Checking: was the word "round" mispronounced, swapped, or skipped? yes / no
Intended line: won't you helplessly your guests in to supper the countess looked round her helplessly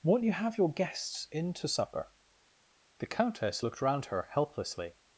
no